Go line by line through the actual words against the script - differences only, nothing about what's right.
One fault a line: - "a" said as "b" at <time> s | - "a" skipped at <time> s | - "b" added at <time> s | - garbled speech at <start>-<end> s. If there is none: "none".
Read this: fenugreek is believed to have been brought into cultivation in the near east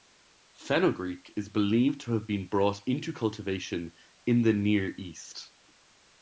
none